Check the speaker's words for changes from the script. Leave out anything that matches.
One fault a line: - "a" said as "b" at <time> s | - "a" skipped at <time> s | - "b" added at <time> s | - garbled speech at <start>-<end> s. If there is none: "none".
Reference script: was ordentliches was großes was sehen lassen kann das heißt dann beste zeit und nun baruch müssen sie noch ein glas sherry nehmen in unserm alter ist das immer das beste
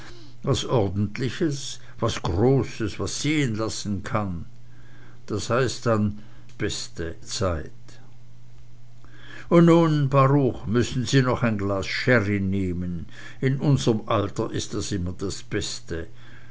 none